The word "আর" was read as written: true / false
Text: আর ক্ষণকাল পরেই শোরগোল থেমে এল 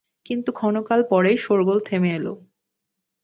false